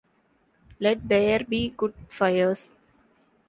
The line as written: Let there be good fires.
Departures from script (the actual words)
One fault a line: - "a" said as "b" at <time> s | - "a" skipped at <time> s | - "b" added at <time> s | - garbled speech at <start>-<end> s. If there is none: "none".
none